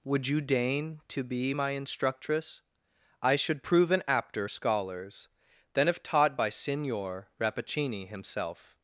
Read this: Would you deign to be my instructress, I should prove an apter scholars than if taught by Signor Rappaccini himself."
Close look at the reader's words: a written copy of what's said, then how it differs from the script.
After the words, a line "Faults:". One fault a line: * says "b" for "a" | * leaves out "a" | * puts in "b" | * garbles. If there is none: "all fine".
Would you deign to be my instructress, I should prove an apter scholars than if taught by Signor Rappaccini himself."
Faults:
all fine